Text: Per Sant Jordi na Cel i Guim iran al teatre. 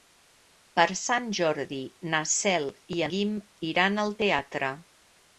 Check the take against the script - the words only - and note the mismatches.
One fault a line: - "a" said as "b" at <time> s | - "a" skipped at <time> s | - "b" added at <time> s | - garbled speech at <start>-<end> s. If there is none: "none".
none